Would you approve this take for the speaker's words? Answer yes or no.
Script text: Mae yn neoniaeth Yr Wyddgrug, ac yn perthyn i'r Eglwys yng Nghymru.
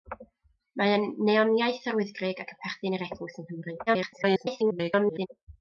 no